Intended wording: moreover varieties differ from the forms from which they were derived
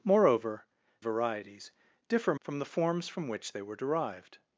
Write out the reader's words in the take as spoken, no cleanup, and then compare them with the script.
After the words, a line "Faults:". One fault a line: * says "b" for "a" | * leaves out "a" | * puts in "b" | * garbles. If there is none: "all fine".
moreover varieties differ from the forms from which they were derived
Faults:
all fine